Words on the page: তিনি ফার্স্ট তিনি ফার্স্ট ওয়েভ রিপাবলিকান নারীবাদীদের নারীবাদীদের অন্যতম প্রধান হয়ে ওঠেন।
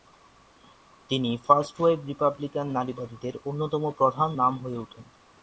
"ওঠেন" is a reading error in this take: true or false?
false